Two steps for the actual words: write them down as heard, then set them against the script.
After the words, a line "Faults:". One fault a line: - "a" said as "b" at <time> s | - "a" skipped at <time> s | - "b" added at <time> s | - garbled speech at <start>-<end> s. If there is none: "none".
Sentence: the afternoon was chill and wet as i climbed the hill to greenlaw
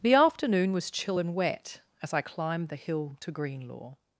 the afternoon was chill and wet as i climbed the hill to greenlaw
Faults:
none